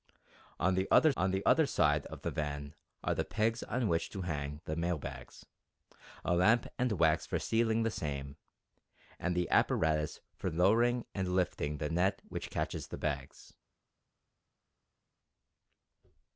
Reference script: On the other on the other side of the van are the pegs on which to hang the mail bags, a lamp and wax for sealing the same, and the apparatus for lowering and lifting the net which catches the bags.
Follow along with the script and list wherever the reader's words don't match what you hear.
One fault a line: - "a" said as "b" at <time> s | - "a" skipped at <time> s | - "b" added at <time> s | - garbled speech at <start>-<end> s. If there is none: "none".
none